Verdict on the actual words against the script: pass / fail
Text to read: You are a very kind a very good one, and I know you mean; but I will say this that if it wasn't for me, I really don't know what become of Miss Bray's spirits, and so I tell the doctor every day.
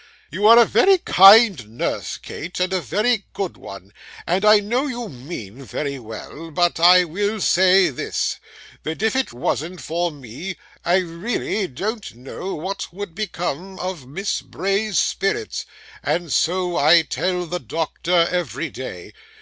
fail